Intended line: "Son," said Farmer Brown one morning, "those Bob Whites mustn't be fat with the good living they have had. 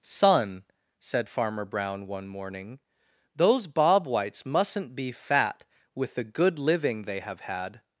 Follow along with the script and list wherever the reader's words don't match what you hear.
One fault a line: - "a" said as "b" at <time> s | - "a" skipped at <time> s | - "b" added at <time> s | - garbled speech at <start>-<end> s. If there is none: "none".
none